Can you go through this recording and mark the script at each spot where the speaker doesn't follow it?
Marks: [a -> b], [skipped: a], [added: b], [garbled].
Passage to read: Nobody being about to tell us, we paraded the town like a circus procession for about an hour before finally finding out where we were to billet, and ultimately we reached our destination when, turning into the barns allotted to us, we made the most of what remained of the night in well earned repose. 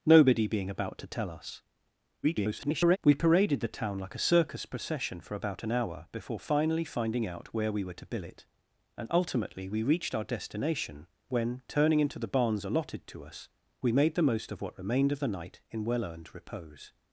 Nobody being about to tell us, [garbled] we paraded the town like a circus procession for about an hour before finally finding out where we were to billet, and ultimately we reached our destination when, turning into the barns allotted to us, we made the most of what remained of the night in well earned repose.